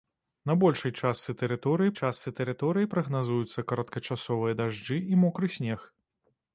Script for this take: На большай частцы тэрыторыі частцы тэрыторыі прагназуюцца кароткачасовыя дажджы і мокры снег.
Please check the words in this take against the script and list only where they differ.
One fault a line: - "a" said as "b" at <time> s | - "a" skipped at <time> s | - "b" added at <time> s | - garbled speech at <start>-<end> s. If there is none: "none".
none